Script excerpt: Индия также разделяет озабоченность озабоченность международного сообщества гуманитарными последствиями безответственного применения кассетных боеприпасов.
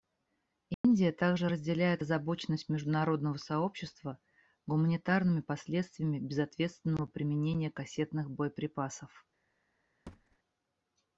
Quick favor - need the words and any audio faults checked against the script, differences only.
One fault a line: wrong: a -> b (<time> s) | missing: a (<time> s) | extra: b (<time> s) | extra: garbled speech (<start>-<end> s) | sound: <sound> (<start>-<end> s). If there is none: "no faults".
sound: dropout (0.7-0.8 s)
missing: озабоченность (2.7 s)
sound: thud (10.1-10.4 s)